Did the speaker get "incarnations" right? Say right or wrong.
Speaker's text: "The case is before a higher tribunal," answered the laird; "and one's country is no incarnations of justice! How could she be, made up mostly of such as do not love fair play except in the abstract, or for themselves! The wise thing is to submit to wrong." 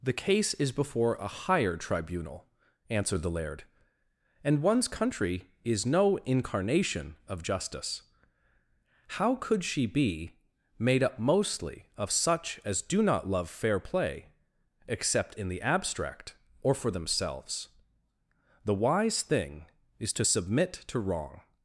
wrong